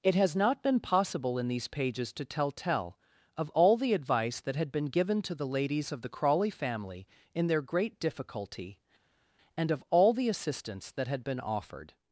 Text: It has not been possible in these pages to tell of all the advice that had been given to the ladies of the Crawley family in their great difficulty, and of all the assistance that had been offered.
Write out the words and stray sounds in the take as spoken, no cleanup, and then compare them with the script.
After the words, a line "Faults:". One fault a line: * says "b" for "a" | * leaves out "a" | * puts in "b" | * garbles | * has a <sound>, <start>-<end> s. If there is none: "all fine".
It has not been possible in these pages to tell tell of all the advice that had been given to the ladies of the Crawley family in their great difficulty, and of all the assistance that had been offered.
Faults:
* puts in "tell"